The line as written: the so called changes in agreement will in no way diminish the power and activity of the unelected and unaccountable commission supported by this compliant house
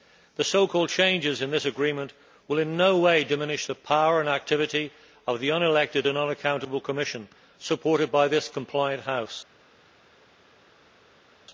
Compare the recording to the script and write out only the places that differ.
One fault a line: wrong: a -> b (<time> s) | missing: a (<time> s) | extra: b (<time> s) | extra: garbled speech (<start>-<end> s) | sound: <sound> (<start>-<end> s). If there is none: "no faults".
extra: this (1.5 s)